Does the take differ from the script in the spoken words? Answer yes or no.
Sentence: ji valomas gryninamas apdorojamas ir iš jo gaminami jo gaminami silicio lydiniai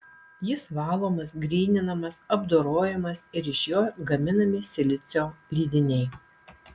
yes